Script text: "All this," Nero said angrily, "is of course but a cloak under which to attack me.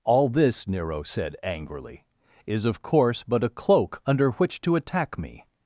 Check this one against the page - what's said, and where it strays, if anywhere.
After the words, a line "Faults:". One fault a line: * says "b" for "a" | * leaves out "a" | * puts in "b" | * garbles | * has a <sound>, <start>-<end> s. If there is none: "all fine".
"All this," Nero said angrily, "is of course but a cloak under which to attack me.
Faults:
all fine